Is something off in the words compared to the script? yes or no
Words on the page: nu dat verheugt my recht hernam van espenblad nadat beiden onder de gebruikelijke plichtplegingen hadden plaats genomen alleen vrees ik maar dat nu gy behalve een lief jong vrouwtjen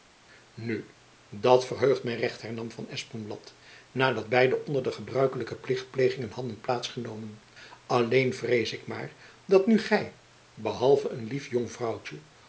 no